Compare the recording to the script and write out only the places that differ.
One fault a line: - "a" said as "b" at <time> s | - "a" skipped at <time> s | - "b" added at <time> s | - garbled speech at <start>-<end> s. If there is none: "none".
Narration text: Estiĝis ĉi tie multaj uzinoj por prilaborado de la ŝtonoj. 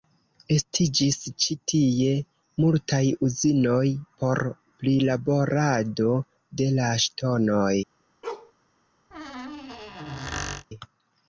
none